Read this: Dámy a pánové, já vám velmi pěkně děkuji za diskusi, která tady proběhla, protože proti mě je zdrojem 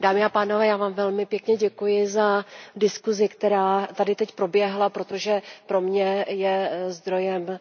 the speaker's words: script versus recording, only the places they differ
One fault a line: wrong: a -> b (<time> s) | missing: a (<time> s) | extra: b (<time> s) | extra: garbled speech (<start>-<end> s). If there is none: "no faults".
extra: teď (4.2 s)
wrong: proti -> pro (5.7 s)